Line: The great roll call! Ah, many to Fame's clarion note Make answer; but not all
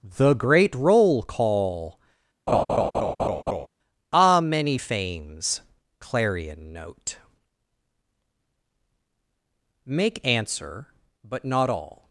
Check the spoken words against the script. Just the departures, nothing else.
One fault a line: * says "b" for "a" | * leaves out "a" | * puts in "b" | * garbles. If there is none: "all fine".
* leaves out "to"